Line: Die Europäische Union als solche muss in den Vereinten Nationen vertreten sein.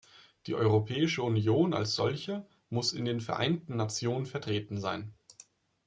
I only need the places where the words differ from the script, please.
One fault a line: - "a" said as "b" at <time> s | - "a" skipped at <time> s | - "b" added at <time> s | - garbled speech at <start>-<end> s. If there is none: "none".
none